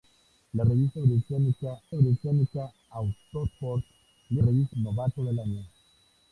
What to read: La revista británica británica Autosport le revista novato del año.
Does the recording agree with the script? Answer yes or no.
yes